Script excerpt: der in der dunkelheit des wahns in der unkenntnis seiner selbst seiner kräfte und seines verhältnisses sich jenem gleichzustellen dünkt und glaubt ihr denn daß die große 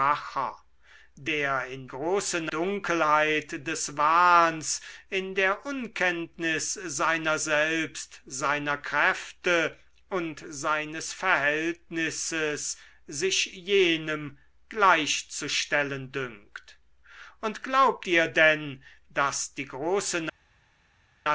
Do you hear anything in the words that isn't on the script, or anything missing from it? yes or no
yes